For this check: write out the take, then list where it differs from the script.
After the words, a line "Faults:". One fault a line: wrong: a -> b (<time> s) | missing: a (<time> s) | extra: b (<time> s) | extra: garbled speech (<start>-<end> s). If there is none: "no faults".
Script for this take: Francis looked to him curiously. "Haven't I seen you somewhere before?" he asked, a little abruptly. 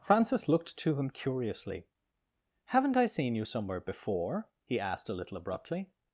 Francis looked to him curiously. "Haven't I seen you somewhere before?" he asked, a little abruptly.
Faults:
no faults